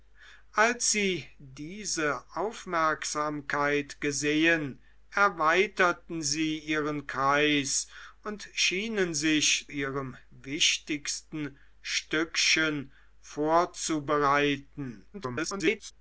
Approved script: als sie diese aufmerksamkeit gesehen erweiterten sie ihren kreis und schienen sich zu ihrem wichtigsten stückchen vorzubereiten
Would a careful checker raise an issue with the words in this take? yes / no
yes